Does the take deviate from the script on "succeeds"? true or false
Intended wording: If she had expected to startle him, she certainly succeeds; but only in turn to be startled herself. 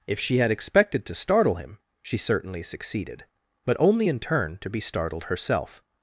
true